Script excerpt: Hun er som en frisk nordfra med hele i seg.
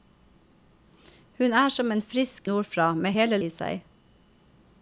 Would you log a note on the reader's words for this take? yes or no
no